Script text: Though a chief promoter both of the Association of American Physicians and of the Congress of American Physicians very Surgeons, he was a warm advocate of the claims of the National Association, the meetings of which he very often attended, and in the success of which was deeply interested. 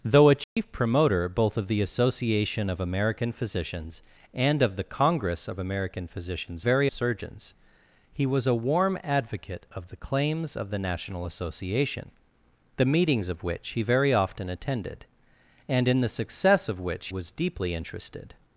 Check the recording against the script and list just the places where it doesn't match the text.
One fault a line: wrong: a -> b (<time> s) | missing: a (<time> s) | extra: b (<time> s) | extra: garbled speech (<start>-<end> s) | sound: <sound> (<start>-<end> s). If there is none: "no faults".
sound: dropout (0.4-0.6 s)